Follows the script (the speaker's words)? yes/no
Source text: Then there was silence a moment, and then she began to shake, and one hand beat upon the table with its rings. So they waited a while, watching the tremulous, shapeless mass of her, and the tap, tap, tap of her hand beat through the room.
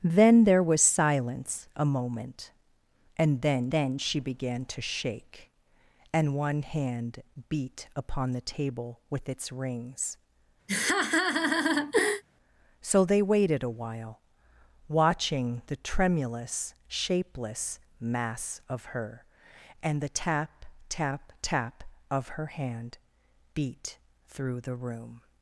no